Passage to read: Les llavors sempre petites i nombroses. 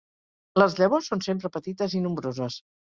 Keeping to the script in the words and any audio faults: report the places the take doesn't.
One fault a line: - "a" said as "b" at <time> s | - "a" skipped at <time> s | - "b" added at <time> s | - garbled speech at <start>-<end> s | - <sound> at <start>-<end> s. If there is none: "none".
- "són" added at 1.1 s